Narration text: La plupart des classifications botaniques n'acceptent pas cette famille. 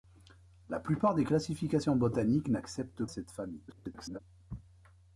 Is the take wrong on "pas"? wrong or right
wrong